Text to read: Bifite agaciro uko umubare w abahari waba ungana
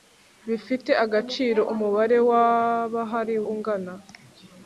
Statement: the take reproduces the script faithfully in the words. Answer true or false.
false